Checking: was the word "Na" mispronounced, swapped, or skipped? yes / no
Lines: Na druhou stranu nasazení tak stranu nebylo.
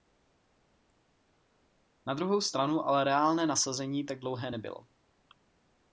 no